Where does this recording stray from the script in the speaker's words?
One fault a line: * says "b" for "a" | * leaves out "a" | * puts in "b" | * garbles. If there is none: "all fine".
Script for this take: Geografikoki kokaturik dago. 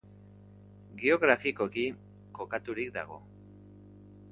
all fine